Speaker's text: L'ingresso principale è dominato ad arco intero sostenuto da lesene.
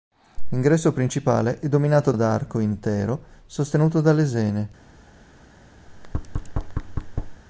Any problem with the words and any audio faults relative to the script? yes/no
yes